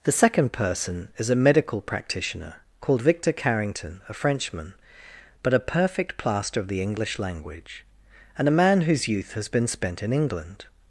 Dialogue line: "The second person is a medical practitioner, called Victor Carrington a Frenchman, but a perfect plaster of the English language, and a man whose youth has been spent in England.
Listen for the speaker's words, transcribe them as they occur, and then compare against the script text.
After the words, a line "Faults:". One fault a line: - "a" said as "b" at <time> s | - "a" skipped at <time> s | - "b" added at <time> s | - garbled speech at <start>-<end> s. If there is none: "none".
"The second person is a medical practitioner, called Victor Carrington a Frenchman, but a perfect plaster of the English language, and a man whose youth has been spent in England.
Faults:
none